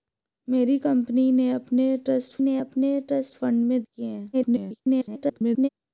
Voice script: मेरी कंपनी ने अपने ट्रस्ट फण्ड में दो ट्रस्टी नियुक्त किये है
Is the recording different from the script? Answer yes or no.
yes